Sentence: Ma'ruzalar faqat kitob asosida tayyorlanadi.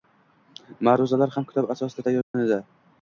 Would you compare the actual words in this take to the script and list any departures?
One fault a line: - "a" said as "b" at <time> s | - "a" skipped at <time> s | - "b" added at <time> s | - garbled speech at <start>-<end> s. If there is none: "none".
- "faqat" said as "ham" at 1.3 s